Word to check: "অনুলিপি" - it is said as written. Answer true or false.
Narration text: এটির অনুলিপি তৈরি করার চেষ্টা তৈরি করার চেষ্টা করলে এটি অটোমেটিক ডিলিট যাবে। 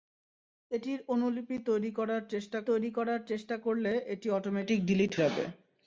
true